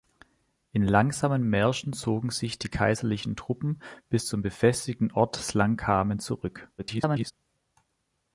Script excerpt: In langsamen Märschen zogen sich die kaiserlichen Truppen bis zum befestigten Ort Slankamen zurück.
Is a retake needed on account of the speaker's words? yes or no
yes